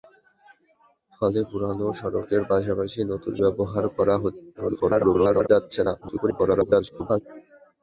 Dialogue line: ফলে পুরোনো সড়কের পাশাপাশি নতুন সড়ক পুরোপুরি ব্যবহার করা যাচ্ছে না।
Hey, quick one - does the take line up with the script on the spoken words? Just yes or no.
no